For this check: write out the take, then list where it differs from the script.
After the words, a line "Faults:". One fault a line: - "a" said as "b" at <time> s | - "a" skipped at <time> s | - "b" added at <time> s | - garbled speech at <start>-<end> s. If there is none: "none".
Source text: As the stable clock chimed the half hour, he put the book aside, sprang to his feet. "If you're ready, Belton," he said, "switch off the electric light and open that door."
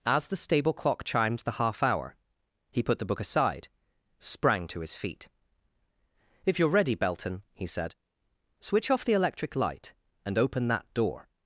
As the stable clock chimed the half hour, he put the book aside, sprang to his feet. "If you're ready, Belton," he said, "switch off the electric light and open that door."
Faults:
none